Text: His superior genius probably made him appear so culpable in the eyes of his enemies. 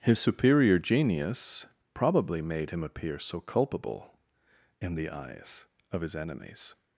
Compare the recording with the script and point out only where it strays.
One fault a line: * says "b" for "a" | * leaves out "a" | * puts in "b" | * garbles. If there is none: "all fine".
all fine